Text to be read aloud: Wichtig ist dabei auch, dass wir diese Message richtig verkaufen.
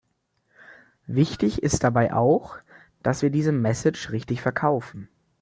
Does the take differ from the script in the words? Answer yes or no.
no